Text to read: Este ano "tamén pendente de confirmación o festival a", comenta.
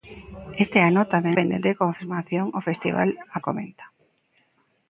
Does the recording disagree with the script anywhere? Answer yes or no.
no